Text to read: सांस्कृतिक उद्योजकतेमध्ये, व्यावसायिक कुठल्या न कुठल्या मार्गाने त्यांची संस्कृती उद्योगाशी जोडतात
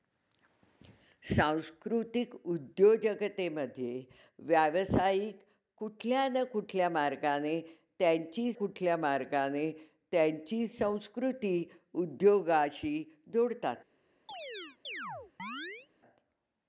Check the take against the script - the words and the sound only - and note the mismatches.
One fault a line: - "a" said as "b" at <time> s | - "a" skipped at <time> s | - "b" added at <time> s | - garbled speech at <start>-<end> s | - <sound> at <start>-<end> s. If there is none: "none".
- "कुठल्या मार्गाने त्यांची" added at 8.6 s
- chirp at 14.3-15.9 s